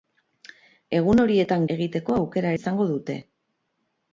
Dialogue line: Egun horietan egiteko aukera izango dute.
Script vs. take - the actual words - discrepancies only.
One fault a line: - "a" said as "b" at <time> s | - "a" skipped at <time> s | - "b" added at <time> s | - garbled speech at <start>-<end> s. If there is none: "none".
none